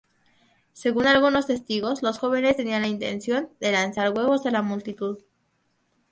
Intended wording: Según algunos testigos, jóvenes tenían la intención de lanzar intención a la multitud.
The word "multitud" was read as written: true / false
true